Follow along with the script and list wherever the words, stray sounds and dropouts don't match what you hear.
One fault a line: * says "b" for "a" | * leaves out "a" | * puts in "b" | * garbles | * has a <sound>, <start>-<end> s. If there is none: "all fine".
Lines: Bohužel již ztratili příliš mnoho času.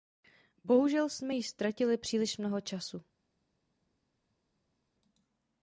* puts in "jsme"